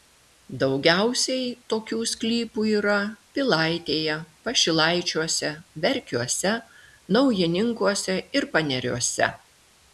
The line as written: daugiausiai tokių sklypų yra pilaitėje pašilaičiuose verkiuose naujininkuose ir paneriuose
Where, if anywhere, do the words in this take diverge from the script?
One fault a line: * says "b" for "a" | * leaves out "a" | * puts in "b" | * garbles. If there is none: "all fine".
all fine